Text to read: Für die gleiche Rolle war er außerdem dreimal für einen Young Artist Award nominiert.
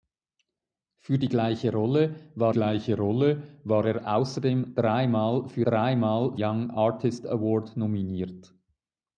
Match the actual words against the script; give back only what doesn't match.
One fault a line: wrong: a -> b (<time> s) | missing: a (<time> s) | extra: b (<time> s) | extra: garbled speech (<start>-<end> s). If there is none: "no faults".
extra: gleiche Rolle war (2.5 s)
wrong: einen -> dreimal (5.6 s)